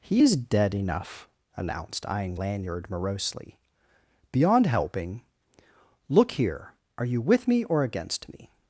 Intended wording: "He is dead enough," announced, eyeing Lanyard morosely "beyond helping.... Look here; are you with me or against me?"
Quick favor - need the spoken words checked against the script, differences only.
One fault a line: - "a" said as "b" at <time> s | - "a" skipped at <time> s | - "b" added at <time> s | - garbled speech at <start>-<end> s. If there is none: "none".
none